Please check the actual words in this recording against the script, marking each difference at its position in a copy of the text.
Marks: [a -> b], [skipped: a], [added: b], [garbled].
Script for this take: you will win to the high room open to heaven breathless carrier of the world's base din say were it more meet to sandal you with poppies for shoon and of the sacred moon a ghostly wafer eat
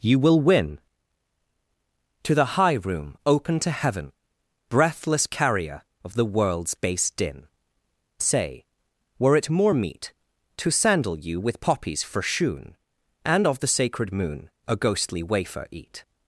you will win to the high room open to heaven breathless carrier of the world's base din say were it more meet to sandal you with poppies for shoon and of the sacred moon a ghostly wafer eat